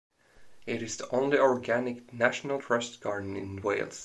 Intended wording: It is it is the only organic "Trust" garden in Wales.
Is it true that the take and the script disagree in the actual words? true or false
true